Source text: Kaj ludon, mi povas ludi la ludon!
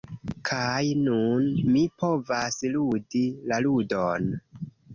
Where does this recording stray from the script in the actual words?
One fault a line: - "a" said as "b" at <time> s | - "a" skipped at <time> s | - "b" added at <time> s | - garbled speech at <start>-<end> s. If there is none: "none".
- "ludon" said as "nun" at 1.0 s